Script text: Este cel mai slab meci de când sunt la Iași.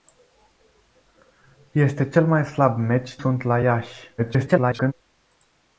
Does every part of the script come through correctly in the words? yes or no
no